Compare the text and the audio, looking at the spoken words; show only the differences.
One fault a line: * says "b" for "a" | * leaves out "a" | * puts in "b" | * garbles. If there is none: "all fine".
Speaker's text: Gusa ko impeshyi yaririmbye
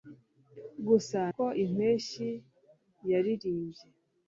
all fine